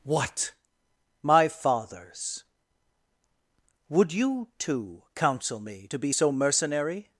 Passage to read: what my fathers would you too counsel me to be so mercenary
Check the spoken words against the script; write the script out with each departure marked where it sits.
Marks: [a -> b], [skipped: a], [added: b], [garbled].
what my fathers would you too counsel me to be so mercenary